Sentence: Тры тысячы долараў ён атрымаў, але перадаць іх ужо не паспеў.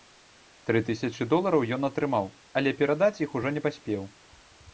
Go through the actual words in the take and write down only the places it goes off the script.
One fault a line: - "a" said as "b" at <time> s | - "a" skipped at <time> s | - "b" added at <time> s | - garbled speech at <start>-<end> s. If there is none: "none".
none